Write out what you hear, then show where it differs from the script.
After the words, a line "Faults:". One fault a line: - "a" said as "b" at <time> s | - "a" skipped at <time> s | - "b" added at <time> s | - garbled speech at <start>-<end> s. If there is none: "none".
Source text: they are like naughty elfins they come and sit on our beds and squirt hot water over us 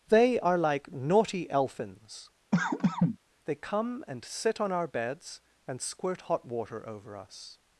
they are like naughty elfins they come and sit on our beds and squirt hot water over us
Faults:
none